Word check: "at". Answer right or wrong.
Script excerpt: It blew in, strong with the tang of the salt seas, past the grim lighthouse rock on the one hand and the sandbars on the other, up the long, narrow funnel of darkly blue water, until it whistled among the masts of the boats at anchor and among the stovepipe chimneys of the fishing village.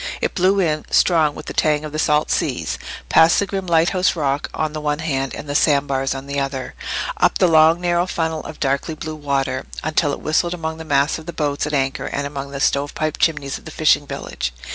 right